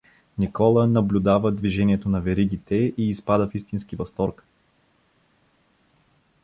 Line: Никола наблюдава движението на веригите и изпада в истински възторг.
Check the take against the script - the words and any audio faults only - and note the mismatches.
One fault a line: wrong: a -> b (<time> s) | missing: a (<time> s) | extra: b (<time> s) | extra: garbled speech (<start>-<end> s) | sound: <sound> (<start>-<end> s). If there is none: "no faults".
no faults